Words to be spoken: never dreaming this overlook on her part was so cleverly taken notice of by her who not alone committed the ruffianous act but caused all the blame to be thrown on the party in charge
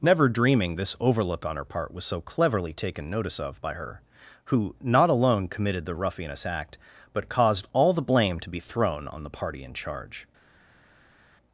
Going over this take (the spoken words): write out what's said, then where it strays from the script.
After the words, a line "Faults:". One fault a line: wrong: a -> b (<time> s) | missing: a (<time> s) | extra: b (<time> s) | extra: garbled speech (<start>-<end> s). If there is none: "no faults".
never dreaming this overlook on her part was so cleverly taken notice of by her who not alone committed the ruffianous act but caused all the blame to be thrown on the party in charge
Faults:
no faults